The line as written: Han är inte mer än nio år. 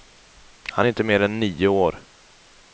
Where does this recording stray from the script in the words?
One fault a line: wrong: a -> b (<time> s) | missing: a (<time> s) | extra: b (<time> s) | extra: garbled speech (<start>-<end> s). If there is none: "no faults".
no faults